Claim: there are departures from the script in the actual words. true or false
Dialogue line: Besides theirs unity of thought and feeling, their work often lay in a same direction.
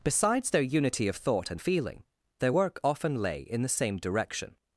true